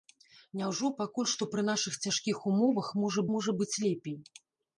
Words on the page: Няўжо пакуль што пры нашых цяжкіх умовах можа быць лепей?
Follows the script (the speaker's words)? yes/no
no